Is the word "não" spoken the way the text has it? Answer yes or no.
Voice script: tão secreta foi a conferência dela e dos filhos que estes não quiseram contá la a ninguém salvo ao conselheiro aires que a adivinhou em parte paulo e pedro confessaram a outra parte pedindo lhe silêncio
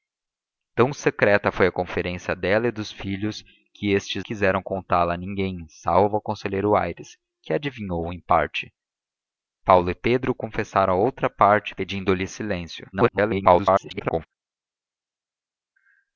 no